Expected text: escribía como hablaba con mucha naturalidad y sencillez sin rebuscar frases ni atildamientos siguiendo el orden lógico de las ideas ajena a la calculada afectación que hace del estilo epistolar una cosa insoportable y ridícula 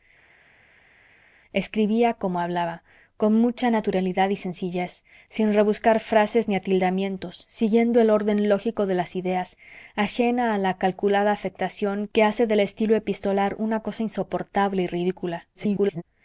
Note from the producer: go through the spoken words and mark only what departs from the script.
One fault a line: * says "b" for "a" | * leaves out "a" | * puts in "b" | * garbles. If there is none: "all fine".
* garbles